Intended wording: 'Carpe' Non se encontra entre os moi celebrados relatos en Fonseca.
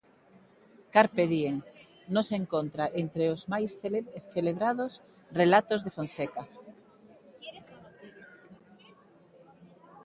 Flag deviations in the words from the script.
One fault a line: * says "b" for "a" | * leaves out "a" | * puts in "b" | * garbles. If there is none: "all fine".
* puts in "Diem"
* says "máis" for "moi"
* says "de" for "en"